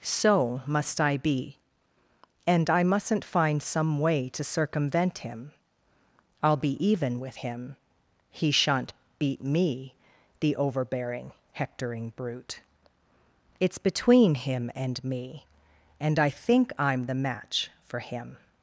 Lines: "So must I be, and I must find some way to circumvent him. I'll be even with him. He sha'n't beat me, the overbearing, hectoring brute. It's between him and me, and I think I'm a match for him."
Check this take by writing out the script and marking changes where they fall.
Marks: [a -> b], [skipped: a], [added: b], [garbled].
"So must I be, and I [must -> mustn't] find some way to circumvent him. I'll be even with him. He sha'n't beat me, the overbearing, hectoring brute. It's between him and me, and I think I'm [a -> the] match for him."